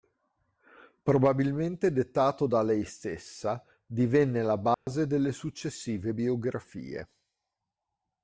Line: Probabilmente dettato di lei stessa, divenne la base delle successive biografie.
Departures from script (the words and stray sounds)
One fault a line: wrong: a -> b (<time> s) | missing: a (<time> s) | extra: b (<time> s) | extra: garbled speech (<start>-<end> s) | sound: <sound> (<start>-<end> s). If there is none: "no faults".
wrong: di -> da (2.5 s)
sound: dropout (4.7-4.9 s)